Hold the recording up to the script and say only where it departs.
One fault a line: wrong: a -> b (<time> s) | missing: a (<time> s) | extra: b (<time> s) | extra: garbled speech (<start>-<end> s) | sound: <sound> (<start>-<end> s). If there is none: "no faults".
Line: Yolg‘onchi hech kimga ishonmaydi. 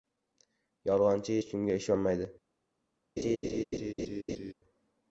sound: laugh (3.2-4.5 s)